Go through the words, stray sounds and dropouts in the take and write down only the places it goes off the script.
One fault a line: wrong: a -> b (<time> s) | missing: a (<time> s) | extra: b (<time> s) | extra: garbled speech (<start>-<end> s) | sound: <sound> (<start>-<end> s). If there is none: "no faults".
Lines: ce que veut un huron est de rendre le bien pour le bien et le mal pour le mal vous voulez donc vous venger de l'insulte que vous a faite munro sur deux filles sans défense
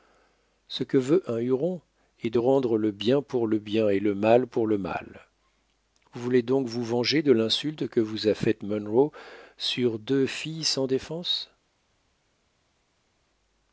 no faults